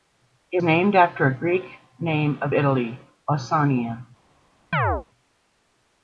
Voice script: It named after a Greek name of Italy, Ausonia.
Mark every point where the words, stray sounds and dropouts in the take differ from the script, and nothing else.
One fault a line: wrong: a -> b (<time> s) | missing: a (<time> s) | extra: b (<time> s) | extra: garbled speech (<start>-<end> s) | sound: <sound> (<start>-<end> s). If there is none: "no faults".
sound: chirp (4.7-5.0 s)